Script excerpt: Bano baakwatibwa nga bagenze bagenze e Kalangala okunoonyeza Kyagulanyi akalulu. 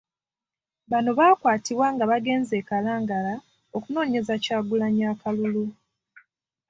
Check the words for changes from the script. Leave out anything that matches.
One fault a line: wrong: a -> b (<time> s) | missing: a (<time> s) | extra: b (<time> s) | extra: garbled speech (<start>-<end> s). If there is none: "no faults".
missing: bagenze (2.5 s)